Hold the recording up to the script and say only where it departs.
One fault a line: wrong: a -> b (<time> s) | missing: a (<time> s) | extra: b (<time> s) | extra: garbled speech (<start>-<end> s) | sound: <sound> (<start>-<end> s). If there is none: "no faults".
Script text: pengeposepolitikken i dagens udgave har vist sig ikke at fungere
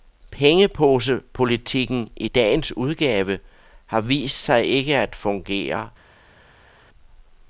no faults